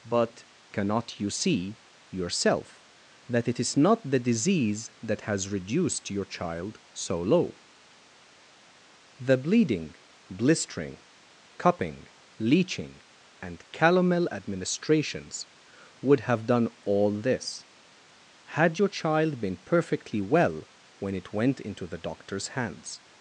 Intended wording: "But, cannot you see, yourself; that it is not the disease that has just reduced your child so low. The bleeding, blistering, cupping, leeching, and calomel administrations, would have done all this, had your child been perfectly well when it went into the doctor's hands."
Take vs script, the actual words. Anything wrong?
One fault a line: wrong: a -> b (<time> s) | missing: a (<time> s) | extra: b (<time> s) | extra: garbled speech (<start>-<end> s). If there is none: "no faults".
missing: just (5.5 s)